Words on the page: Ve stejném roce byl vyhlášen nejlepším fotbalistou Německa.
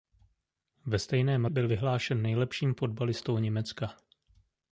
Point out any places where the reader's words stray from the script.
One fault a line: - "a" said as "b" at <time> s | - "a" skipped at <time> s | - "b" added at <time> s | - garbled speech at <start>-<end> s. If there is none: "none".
- "roce" skipped at 1.4 s